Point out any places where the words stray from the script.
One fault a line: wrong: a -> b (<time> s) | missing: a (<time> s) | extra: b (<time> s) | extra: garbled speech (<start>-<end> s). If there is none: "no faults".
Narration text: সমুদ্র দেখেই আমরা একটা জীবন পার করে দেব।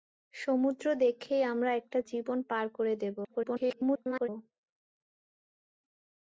extra: garbled speech (3.2-4.3 s)